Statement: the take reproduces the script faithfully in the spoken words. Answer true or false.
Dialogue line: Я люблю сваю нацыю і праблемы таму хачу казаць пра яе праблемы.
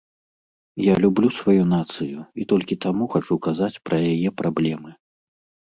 false